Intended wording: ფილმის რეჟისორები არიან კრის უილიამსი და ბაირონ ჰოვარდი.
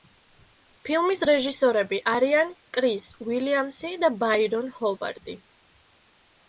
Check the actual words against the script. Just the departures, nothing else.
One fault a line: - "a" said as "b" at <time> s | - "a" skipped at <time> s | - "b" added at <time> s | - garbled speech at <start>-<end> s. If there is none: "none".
none